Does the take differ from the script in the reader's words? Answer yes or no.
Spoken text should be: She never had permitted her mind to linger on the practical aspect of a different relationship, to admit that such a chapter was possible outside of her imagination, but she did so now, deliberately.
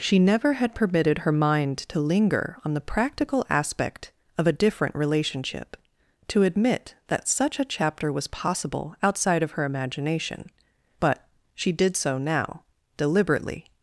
no